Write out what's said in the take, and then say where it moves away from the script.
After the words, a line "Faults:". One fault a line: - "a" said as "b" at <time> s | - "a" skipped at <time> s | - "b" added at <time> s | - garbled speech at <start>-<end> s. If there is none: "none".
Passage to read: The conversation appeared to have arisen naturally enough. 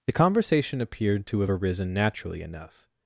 The conversation appeared to have arisen naturally enough.
Faults:
none